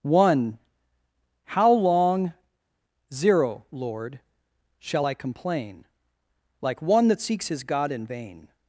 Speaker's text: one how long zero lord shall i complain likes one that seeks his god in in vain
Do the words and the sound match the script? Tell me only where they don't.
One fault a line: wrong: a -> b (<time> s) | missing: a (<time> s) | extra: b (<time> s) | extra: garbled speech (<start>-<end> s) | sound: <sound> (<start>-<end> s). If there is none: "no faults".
wrong: likes -> like (6.6 s)
missing: in (8.1 s)